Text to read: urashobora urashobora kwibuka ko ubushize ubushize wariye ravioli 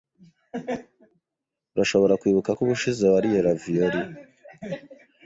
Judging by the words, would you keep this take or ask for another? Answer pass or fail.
fail